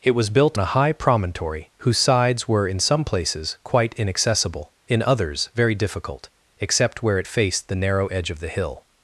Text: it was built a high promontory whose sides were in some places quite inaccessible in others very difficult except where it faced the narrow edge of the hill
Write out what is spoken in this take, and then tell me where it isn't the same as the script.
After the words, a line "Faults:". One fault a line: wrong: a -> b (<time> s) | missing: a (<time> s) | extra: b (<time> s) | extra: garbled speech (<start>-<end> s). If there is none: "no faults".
it was built a high promontory whose sides were in some places quite inaccessible in others very difficult except where it faced the narrow edge of the hill
Faults:
no faults